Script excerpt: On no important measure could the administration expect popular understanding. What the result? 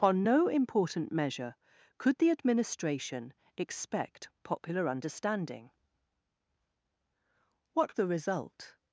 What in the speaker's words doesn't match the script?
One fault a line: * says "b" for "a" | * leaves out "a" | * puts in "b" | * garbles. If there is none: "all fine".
all fine